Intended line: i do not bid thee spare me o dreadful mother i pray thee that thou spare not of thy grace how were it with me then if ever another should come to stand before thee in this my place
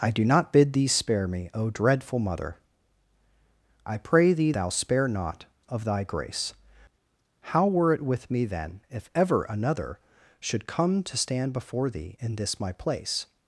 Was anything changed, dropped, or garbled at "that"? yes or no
yes